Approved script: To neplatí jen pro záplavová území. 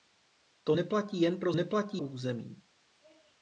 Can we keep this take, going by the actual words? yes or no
no